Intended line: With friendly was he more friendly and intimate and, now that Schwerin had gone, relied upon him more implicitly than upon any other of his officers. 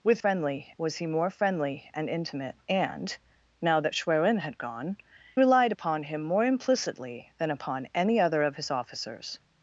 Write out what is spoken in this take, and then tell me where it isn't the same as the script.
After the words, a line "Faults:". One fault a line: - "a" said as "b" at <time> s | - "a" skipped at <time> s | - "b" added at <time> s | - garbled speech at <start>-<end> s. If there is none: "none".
With friendly was he more friendly and intimate and, now that Schwerin had gone, relied upon him more implicitly than upon any other of his officers.
Faults:
none